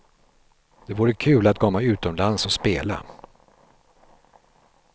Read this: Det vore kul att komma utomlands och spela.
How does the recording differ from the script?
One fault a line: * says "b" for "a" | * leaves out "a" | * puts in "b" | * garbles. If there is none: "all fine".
all fine